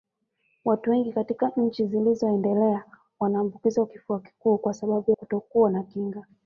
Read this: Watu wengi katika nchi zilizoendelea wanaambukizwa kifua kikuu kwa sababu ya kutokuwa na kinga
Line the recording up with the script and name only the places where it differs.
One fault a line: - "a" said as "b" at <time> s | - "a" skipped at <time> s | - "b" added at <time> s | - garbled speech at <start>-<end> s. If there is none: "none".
- "ya" skipped at 5.1 s